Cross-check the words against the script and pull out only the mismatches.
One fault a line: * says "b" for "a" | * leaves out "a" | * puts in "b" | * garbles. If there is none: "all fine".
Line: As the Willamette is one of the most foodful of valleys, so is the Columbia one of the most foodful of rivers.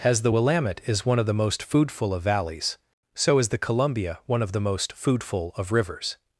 all fine